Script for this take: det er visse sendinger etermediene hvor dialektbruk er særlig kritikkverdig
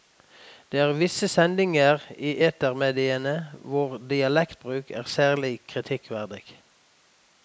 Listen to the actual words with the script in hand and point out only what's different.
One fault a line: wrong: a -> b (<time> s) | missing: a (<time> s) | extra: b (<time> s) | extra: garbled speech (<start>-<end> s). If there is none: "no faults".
extra: i (2.2 s)